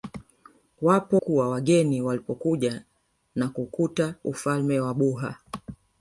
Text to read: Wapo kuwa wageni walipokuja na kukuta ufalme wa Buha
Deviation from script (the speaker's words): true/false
false